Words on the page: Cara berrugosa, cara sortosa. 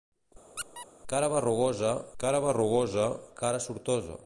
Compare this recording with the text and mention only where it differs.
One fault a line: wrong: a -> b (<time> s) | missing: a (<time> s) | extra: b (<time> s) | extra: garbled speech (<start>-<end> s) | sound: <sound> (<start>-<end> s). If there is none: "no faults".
sound: squeak (0.6-0.9 s)
extra: berrugosa cara (2.5 s)